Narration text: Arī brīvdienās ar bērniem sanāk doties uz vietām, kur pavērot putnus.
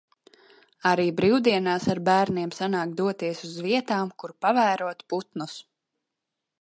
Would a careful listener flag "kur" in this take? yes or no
no